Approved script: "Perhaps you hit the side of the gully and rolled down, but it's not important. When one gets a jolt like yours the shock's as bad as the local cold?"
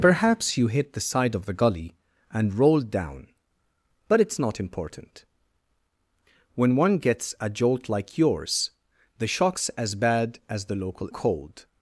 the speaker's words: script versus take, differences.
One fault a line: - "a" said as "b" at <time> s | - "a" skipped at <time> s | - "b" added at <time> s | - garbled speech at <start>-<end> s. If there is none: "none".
none